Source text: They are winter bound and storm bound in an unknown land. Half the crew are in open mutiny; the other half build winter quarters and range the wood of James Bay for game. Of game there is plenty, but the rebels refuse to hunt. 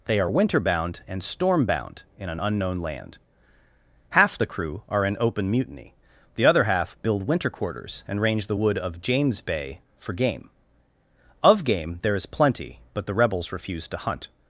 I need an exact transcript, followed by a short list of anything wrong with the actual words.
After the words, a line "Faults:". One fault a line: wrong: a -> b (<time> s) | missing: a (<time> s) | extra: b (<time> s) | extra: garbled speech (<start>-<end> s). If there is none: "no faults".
They are winter bound and storm bound in an unknown land. Half the crew are in open mutiny; the other half build winter quarters and range the wood of James Bay for game. Of game there is plenty, but the rebels refuse to hunt.
Faults:
no faults